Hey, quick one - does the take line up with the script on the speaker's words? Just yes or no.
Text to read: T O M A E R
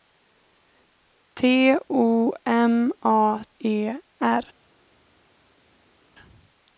yes